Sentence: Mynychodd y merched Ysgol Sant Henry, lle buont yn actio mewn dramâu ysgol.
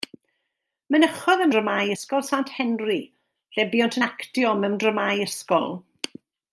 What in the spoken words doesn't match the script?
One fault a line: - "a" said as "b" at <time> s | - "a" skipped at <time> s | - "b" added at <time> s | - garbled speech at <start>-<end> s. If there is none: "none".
- "merched" said as "dramâu" at 1.6 s